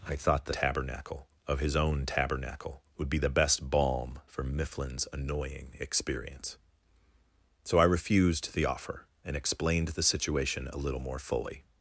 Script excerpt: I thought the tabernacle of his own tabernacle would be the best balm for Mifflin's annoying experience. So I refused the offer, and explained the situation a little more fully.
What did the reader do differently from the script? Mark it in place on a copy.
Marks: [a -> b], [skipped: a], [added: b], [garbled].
I thought the tabernacle of his own tabernacle would be the best balm for Mifflin's annoying experience. So I refused the offer, and explained the situation a little more fully.